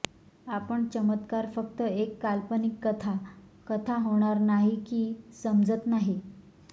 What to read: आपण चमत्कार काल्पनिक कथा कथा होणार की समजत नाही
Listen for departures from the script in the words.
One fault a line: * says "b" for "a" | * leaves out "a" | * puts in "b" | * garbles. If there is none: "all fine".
* puts in "फक्त एक"
* puts in "नाही"